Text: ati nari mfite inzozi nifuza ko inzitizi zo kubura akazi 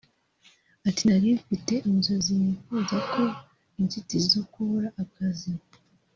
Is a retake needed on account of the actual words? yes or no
no